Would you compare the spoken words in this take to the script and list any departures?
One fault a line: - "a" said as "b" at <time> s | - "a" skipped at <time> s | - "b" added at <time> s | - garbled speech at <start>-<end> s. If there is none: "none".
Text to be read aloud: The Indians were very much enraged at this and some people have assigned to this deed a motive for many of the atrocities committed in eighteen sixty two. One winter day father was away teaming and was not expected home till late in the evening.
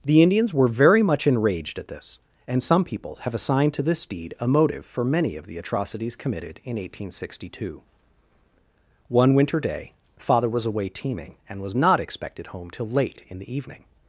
none